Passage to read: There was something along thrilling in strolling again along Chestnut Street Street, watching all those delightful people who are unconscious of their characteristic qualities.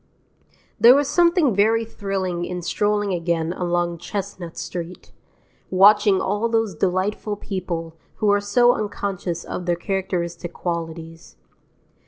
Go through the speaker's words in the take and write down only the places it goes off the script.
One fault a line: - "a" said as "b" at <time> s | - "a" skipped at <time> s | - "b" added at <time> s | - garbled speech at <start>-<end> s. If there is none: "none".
- "along" said as "very" at 1.6 s
- "Street" skipped at 5.1 s
- "so" added at 8.4 s